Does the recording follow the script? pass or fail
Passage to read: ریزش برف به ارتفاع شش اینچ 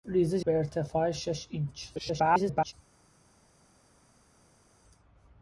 fail